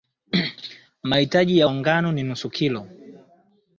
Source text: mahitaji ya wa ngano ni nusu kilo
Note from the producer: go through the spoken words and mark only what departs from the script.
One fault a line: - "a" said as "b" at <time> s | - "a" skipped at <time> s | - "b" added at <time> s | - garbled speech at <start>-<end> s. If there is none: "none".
none